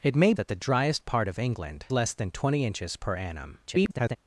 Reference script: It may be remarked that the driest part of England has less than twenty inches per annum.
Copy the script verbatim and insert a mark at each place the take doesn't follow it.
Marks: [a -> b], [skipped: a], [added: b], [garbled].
It may [skipped: be remarked] that the driest part of England [skipped: has] less than twenty inches per annum. [garbled]